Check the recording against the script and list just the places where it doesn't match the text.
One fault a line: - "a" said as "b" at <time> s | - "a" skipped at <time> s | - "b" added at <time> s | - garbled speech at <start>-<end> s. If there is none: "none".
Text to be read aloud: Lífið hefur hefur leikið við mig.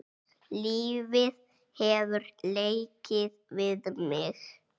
- "hefur" skipped at 2.2 s